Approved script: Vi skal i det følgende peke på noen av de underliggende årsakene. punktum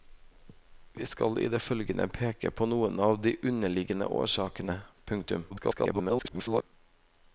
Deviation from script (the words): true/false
true